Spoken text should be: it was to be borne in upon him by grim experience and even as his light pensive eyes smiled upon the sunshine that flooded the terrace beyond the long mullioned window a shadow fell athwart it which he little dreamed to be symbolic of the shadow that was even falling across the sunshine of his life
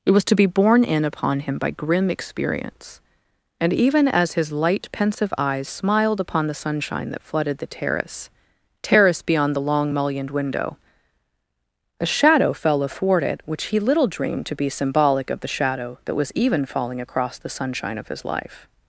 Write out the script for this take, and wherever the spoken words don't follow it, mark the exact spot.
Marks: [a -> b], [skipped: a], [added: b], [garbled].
it was to be borne in upon him by grim experience and even as his light pensive eyes smiled upon the sunshine that flooded the terrace [added: terrace] beyond the long mullioned window a shadow fell athwart it which he little dreamed to be symbolic of the shadow that was even falling across the sunshine of his life